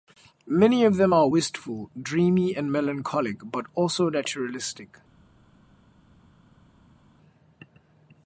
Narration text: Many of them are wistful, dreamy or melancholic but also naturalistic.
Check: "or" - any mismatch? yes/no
yes